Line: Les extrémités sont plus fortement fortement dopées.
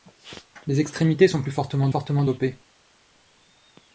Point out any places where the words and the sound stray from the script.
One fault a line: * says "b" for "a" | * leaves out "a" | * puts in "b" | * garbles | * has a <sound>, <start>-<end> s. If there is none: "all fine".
all fine